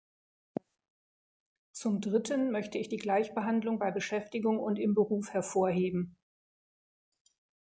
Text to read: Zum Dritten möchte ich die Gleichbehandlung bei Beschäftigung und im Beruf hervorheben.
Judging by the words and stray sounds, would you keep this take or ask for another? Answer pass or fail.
pass